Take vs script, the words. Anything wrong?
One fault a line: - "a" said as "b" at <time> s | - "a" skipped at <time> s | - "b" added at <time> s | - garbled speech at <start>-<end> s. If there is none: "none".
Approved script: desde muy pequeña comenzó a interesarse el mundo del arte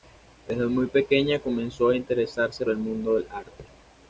none